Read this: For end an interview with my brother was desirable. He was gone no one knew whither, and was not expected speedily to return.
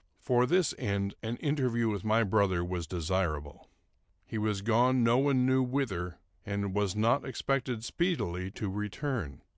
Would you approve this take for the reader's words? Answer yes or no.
no